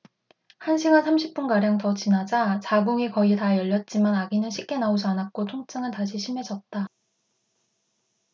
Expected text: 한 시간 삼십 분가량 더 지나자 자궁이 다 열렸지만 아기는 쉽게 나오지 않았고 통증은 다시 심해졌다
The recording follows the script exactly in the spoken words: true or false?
false